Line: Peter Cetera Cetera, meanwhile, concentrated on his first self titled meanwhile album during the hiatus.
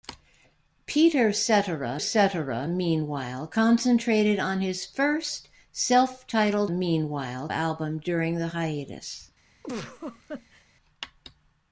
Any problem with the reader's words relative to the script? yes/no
no